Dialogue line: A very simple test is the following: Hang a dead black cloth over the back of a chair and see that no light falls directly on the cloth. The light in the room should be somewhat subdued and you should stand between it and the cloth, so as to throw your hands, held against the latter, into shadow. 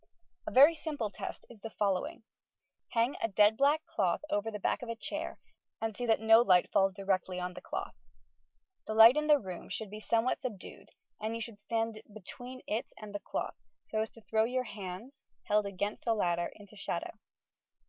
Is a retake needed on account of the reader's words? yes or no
no